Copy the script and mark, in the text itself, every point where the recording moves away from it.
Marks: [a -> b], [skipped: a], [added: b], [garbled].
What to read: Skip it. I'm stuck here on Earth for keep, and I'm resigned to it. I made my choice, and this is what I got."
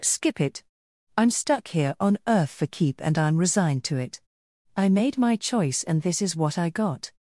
Skip it. I'm stuck here on Earth for keep, and I'm resigned to it. I made my choice, and this is what I got."